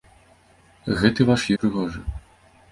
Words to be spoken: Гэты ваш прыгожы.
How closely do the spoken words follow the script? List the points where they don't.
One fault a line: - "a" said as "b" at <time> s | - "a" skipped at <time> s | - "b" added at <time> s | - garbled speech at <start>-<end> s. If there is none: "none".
none